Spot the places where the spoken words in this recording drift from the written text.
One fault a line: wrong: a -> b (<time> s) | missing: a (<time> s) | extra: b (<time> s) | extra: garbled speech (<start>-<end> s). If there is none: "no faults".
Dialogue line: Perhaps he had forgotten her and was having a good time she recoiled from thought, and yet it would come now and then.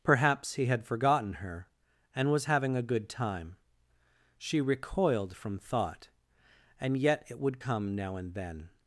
no faults